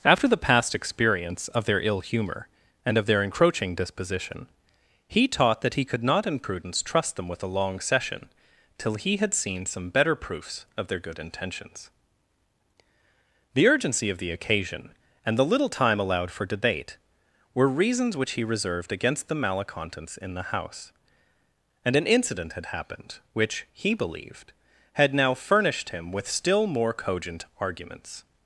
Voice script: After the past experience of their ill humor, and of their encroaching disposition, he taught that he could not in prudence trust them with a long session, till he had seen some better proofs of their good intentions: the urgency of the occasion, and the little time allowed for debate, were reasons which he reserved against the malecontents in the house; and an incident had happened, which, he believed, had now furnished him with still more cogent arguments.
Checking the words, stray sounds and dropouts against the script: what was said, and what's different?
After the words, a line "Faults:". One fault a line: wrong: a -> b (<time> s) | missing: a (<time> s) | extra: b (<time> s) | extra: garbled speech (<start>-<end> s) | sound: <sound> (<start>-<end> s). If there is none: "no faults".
After the past experience of their ill humor, and of their encroaching disposition, he taught that he could not in prudence trust them with a long session, till he had seen some better proofs of their good intentions: the urgency of the occasion, and the little time allowed for debate, were reasons which he reserved against the malecontents in the house; and an incident had happened, which, he believed, had now furnished him with still more cogent arguments.
Faults:
no faults